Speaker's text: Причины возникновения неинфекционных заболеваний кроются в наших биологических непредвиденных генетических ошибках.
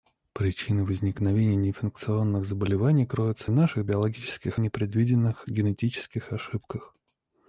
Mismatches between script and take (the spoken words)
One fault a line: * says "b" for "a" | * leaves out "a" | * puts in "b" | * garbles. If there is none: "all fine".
all fine